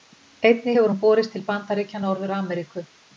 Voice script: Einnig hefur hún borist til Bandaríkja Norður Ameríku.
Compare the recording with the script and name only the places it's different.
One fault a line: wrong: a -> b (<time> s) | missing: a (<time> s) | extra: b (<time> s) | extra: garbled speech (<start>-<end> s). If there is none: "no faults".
no faults